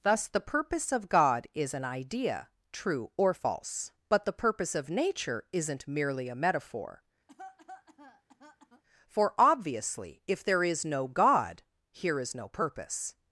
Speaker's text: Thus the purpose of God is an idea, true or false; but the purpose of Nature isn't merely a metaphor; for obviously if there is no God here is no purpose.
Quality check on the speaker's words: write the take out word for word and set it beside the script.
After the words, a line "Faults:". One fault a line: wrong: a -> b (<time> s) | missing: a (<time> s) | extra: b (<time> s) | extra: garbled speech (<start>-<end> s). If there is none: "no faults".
Thus the purpose of God is an idea, true or false; but the purpose of Nature isn't merely a metaphor; for obviously if there is no God here is no purpose.
Faults:
no faults